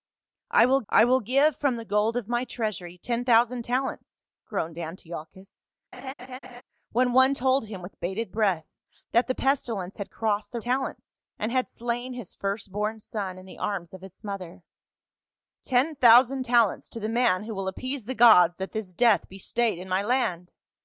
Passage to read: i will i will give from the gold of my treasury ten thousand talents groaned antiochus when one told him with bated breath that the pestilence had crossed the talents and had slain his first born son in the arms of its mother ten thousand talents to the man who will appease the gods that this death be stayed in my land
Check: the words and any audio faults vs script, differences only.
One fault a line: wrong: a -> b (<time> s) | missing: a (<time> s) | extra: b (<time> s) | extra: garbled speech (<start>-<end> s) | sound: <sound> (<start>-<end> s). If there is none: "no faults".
sound: laugh (5.9-6.6 s)